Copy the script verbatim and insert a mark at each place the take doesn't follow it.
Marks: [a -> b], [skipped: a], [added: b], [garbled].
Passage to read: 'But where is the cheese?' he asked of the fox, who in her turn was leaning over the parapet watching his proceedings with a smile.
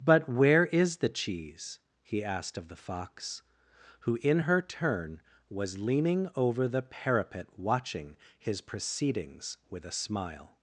'But where is the cheese?' he asked of the fox, who in her turn was leaning over the parapet watching his proceedings with a smile.